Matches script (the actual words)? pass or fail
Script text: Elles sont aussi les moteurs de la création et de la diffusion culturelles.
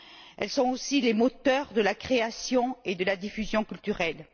pass